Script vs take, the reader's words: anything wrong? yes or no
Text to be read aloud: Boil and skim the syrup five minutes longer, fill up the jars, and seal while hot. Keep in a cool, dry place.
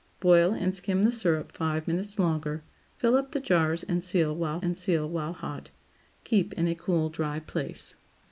yes